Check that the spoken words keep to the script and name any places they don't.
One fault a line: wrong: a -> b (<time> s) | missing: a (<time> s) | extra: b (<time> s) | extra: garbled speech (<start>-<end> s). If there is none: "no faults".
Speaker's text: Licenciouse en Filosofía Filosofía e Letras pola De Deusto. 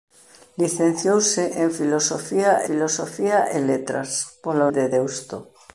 no faults